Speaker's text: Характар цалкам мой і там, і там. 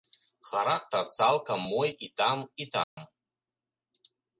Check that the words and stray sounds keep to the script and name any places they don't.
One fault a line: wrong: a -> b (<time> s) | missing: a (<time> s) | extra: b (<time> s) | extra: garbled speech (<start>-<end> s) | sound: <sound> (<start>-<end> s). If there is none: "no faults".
sound: dropout (2.8-3.0 s)